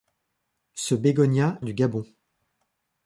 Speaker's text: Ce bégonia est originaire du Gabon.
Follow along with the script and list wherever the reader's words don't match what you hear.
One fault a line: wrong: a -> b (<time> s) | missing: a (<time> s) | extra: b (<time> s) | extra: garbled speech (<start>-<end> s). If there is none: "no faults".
missing: est originaire (1.6 s)